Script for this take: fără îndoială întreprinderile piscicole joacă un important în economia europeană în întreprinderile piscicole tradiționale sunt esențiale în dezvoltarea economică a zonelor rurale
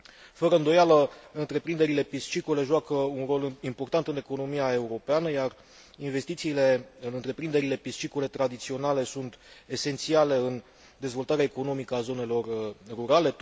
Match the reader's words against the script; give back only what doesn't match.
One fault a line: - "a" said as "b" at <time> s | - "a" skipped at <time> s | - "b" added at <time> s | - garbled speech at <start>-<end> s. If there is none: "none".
- "rol" added at 3.2 s
- "iar investițiile" added at 5.3 s